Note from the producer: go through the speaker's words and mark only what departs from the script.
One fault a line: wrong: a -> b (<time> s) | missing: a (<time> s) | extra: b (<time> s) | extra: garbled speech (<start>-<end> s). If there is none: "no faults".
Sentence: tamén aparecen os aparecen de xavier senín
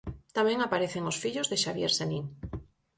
wrong: aparecen -> fillos (1.2 s)